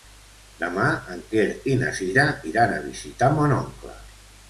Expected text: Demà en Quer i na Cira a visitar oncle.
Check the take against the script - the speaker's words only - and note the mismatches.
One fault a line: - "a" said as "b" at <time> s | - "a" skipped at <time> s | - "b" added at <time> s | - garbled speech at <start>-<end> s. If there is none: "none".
- "iran" added at 2.5 s
- "mon" added at 3.4 s